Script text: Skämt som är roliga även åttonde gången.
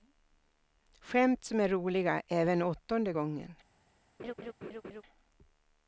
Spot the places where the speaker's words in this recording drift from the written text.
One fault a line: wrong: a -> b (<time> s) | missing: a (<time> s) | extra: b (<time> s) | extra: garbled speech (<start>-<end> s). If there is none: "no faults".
no faults